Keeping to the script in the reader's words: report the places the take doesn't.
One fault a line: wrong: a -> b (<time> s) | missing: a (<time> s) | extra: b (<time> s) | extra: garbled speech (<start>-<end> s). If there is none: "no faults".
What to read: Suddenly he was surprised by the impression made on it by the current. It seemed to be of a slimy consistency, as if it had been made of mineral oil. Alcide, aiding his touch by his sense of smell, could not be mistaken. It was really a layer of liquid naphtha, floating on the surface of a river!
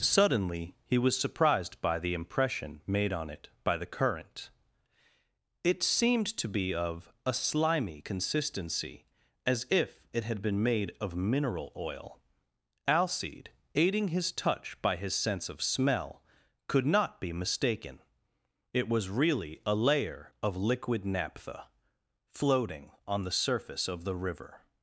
wrong: a -> the (24.0 s)